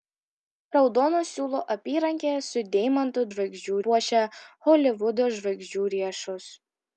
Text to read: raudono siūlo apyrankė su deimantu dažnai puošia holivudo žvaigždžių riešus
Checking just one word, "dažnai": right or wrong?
wrong